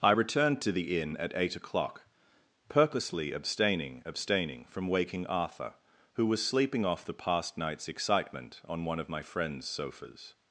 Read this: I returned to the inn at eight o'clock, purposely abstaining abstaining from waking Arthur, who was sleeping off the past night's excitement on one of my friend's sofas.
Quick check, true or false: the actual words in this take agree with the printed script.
true